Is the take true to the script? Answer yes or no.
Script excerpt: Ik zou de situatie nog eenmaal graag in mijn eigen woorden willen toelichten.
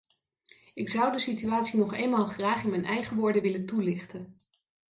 yes